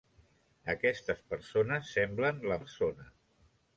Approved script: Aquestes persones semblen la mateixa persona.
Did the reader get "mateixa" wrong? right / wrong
wrong